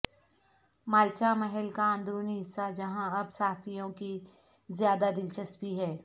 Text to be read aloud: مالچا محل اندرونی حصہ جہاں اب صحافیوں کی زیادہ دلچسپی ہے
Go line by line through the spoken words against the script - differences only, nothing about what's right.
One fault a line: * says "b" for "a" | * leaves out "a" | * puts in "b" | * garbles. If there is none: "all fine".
* puts in "کا"